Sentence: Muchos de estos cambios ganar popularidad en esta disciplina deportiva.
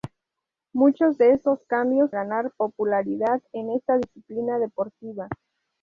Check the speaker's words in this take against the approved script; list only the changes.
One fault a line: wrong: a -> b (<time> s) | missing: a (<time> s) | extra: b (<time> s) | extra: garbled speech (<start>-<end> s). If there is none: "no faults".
no faults